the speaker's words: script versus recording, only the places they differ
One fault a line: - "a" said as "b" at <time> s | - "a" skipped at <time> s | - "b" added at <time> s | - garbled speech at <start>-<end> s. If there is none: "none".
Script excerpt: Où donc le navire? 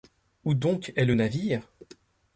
- "est" added at 0.9 s